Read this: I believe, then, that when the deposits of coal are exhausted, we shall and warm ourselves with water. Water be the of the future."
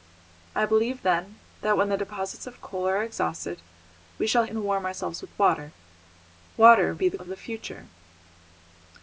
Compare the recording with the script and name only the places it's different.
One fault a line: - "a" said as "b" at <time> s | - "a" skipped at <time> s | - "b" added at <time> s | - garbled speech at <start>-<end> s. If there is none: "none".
none